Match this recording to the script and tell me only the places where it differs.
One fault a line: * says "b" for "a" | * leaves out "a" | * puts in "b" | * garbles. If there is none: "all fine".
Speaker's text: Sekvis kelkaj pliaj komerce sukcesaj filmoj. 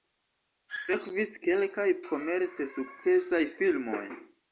* leaves out "pliaj"